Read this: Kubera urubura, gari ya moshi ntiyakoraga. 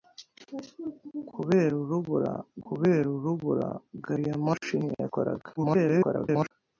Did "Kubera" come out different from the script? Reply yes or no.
no